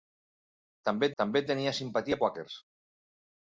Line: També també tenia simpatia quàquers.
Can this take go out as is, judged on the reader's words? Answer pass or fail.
pass